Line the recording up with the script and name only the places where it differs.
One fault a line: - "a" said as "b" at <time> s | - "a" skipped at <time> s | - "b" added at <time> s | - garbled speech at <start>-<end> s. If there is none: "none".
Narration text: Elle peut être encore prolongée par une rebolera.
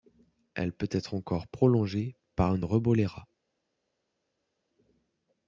none